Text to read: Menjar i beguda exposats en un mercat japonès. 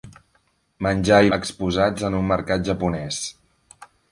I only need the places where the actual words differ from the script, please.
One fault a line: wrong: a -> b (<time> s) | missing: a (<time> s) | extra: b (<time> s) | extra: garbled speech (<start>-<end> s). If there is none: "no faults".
missing: beguda (1.3 s)